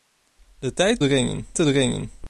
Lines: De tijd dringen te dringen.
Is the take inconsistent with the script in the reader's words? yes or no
no